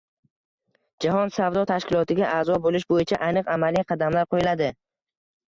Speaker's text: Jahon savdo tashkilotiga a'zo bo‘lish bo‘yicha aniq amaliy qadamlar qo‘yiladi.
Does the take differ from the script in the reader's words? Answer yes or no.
no